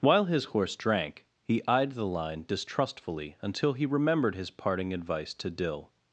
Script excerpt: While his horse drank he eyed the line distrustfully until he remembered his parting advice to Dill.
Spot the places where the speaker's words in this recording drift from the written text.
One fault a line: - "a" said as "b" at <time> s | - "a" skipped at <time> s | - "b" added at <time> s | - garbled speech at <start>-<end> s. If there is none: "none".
none